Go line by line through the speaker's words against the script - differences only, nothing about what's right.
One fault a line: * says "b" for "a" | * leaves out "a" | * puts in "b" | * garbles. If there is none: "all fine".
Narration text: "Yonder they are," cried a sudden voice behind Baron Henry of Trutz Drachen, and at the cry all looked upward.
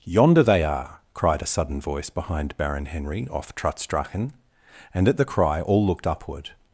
* says "off" for "of"